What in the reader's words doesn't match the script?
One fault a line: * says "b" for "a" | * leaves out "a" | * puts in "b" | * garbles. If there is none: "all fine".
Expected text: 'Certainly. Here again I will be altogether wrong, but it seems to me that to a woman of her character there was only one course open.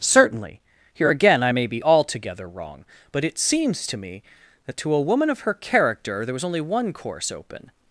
* says "may" for "will"